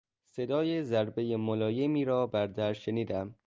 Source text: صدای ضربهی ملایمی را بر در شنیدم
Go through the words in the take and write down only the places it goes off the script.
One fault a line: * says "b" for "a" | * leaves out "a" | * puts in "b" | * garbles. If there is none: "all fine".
all fine